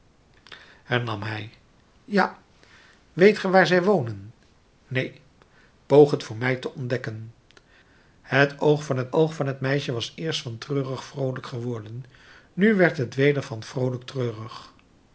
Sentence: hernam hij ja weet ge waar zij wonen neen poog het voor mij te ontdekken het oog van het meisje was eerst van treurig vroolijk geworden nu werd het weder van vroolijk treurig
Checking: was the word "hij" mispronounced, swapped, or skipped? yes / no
no